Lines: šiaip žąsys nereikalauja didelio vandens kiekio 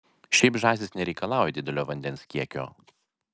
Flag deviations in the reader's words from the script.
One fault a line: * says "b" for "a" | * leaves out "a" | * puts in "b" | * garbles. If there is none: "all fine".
all fine